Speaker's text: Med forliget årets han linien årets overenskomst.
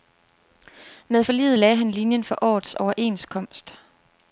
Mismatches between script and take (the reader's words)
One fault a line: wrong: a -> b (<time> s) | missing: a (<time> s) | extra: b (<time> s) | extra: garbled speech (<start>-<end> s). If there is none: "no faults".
wrong: årets -> lagde (1.6 s)
extra: for (2.2 s)